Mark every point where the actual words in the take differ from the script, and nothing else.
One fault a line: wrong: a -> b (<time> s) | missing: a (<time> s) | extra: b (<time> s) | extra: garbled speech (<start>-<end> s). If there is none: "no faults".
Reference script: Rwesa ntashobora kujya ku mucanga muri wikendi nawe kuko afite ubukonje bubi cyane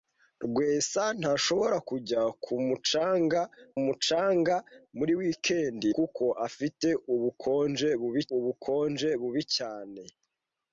extra: mucanga (3.8 s)
missing: nawe (5.9 s)
extra: ubukonje bubi (8.4 s)